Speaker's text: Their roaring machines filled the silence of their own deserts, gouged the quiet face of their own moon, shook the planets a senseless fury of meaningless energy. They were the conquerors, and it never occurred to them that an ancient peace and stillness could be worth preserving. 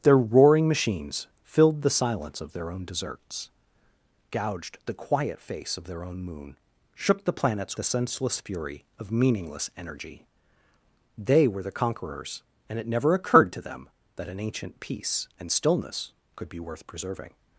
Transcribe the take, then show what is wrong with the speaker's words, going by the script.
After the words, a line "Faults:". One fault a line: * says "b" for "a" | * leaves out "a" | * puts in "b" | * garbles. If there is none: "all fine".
Their roaring machines filled the silence of their own deserts, gouged the quiet face of their own moon, shook the planets a senseless fury of meaningless energy. They were the conquerors, and it never occurred to them that an ancient peace and stillness could be worth preserving.
Faults:
all fine